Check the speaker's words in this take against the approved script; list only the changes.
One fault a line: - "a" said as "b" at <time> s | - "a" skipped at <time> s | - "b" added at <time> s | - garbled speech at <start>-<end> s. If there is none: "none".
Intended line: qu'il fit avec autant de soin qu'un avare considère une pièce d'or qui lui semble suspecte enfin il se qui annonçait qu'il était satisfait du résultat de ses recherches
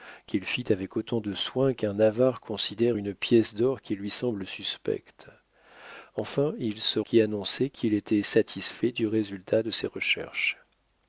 none